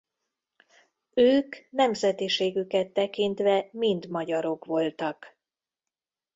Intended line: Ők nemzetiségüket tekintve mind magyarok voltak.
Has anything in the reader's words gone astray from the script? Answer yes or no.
no